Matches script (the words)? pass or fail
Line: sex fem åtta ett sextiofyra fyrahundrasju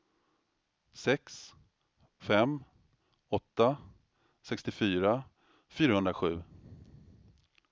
fail